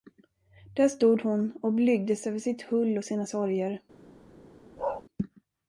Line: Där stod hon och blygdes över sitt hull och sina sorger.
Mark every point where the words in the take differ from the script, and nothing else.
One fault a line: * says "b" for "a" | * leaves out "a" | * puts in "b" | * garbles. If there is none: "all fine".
all fine